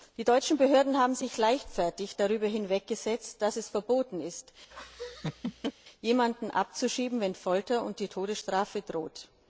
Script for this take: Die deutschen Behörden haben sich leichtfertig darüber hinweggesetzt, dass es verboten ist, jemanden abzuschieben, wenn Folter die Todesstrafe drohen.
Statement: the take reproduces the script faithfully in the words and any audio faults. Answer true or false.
false